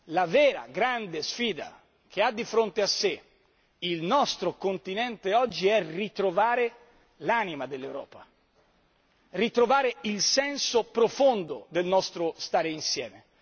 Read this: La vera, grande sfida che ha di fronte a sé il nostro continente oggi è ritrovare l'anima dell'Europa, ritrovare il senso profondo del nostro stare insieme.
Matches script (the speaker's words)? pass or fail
pass